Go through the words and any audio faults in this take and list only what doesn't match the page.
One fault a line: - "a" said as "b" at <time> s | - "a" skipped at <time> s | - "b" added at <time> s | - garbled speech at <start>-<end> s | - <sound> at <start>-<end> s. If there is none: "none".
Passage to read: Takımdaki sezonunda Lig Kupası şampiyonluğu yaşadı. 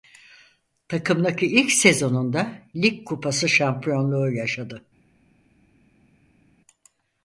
- "ilk" added at 1.5 s